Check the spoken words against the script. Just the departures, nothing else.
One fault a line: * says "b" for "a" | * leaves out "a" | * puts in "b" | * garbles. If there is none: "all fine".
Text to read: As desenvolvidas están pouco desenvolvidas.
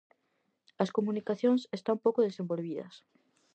* says "comunicacións" for "desenvolvidas"